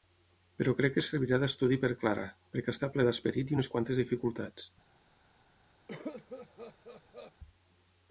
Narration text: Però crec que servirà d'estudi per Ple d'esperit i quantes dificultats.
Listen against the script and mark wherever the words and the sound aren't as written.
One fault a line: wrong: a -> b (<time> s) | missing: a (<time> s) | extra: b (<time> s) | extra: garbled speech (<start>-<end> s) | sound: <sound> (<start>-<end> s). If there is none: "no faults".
extra: Clara perquè està (2.0 s)
extra: unes (3.6 s)
sound: cough (5.9-7.3 s)